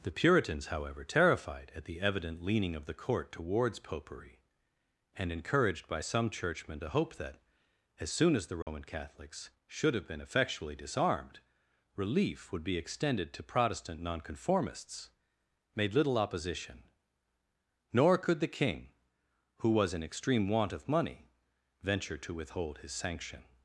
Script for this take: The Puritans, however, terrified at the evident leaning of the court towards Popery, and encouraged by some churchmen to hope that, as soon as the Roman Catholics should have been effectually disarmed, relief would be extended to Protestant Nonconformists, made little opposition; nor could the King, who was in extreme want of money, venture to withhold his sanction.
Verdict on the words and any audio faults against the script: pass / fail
fail